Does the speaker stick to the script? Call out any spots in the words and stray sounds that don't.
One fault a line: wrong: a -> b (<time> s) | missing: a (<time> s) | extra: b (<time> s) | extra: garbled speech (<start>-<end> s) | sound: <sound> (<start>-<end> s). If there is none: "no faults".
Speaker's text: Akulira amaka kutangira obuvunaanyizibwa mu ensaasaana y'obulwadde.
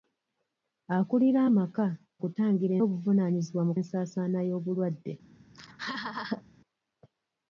sound: laugh (5.5-6.4 s)